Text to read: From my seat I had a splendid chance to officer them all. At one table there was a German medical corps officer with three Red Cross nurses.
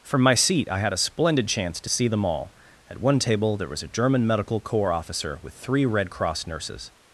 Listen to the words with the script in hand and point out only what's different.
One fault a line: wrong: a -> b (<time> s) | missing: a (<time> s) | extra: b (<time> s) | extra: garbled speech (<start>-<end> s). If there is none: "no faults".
wrong: officer -> see (1.9 s)